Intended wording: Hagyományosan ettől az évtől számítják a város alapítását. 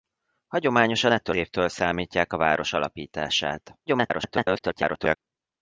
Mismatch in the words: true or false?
true